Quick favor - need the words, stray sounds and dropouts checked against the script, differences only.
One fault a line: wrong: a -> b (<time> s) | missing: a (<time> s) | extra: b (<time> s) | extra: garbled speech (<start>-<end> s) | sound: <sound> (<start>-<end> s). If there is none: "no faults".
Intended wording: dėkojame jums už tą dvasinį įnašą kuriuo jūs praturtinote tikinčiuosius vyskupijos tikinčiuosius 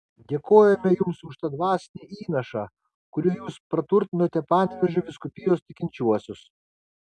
wrong: tikinčiuosius -> panevėžio (4.5 s)